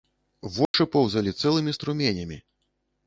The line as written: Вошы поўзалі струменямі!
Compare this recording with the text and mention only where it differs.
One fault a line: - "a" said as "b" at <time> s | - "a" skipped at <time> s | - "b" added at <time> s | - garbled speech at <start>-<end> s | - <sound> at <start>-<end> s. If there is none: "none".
- dropout at 0.7-0.7 s
- "цэлымі" added at 1.4 s